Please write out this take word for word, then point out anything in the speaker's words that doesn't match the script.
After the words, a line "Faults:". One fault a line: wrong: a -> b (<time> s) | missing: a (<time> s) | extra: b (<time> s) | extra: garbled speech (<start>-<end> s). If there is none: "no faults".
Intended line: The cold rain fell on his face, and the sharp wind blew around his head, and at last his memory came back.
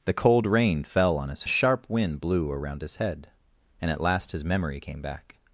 The cold rain fell on his the sharp wind blew around his head, and at last his memory came back.
Faults:
missing: face and (1.4 s)